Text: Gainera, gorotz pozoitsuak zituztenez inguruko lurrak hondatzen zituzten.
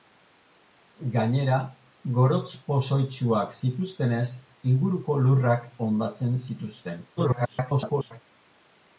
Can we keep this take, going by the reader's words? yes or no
no